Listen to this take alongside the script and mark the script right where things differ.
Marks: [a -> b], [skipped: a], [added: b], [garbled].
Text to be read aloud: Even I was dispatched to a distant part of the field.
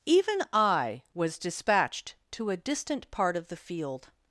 Even I was dispatched to a distant part of the field.